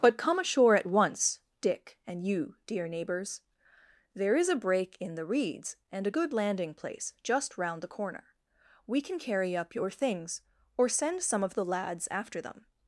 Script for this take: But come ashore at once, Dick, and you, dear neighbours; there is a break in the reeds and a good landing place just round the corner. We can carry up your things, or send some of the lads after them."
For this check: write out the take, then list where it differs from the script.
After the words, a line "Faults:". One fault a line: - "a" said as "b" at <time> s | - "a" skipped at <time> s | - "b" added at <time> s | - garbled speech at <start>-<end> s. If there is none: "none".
But come ashore at once, Dick, and you, dear neighbours; there is a break in the reeds and a good landing place just round the corner. We can carry up your things, or send some of the lads after them."
Faults:
none